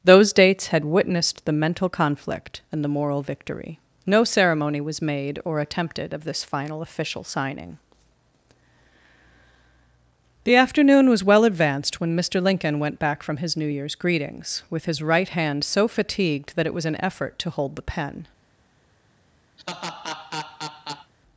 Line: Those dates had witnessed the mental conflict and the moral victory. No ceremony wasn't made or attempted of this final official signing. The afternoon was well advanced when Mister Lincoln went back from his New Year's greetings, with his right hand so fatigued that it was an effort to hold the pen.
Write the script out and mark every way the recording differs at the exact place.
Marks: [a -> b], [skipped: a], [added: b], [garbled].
Those dates had witnessed the mental conflict and the moral victory. No ceremony [wasn't -> was] made or attempted of this final official signing. The afternoon was well advanced when Mister Lincoln went back from his New Year's greetings, with his right hand so fatigued that it was an effort to hold the pen.